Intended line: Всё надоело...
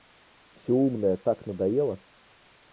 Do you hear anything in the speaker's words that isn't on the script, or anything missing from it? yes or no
yes